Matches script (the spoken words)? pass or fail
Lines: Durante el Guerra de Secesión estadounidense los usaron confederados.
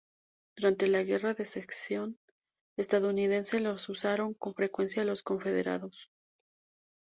fail